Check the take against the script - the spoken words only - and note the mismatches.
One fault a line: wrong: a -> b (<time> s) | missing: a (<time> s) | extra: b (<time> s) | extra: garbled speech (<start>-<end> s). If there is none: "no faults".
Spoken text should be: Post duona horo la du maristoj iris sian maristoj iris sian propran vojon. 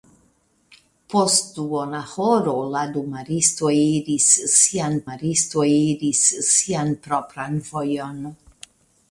no faults